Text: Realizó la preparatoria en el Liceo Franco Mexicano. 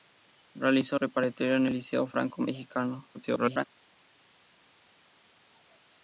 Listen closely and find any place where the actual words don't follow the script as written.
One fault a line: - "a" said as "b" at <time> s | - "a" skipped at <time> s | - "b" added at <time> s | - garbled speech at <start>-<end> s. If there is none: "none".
- "la" skipped at 1.0 s
- garbled speech at 3.1-3.6 s